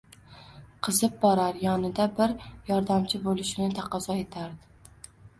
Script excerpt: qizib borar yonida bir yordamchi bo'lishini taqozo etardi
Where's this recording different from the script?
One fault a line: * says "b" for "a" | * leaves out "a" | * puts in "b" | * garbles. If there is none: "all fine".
all fine